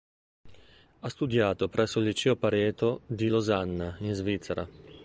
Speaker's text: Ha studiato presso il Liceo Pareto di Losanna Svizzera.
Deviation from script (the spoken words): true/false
true